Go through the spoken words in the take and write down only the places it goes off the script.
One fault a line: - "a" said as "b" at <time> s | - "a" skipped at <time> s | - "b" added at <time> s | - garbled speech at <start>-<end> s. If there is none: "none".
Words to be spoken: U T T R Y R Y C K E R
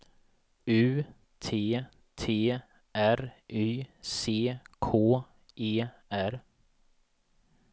- "R Y" skipped at 3.9 s